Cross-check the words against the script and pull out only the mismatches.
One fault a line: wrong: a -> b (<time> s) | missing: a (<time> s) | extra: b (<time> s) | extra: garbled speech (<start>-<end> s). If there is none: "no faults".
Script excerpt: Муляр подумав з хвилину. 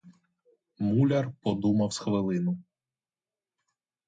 no faults